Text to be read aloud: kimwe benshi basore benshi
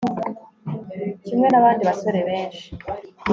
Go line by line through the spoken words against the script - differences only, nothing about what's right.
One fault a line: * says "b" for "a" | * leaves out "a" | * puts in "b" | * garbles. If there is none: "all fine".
* says "nabandi" for "benshi"